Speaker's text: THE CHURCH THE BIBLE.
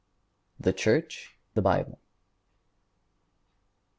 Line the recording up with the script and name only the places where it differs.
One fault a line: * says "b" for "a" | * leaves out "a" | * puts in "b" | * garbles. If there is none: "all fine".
all fine